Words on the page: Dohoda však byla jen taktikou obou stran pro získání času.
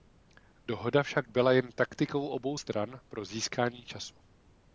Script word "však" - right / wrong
right